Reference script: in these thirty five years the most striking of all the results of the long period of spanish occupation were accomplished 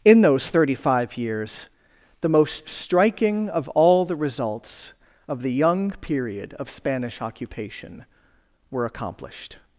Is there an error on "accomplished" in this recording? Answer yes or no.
no